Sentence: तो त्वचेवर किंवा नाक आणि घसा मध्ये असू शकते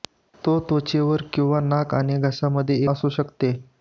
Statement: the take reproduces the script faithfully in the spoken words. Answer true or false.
true